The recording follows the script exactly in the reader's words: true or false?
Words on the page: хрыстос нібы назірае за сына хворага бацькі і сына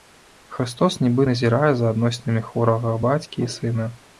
false